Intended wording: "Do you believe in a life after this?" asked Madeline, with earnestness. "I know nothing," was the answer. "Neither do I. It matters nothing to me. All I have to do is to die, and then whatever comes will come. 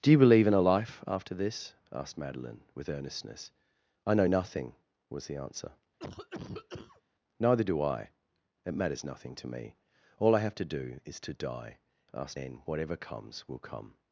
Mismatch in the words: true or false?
true